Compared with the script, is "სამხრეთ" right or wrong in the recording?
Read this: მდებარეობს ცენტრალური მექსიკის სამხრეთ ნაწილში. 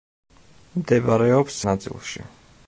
wrong